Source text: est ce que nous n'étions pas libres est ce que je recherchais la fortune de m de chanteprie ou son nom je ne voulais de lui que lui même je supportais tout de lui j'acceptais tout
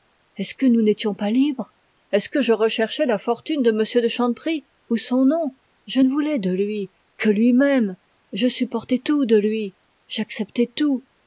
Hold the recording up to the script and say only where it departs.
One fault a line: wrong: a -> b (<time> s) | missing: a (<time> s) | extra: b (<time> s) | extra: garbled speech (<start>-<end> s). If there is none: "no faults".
no faults